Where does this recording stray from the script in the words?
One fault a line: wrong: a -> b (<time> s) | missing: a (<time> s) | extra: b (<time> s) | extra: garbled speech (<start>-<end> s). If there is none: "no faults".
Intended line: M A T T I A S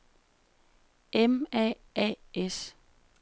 missing: T T I (1.8 s)